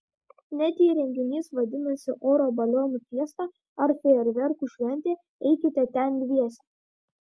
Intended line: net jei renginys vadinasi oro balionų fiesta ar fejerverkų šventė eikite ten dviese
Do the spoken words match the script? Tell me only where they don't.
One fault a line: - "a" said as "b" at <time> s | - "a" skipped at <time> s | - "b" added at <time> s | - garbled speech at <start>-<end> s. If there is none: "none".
none